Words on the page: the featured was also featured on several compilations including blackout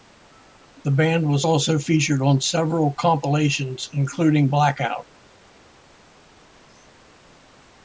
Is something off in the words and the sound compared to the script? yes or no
yes